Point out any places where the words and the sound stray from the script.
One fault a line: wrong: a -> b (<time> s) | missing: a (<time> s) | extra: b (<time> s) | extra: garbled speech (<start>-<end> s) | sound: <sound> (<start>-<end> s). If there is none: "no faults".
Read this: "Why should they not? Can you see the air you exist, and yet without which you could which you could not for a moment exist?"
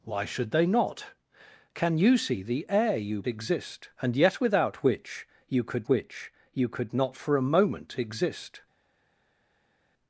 no faults